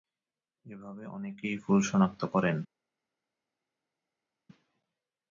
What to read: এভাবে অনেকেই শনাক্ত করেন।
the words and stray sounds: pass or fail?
fail